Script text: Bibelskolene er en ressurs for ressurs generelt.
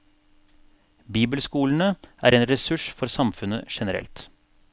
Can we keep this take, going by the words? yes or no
no